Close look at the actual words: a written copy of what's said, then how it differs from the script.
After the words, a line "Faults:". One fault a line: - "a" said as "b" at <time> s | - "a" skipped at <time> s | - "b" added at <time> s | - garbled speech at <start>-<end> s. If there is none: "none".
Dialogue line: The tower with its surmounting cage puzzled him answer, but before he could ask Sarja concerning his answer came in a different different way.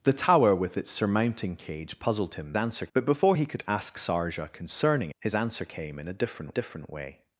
The tower with its surmounting cage puzzled him answer, but before he could ask Sarja concerning his answer came in a different different way.
Faults:
none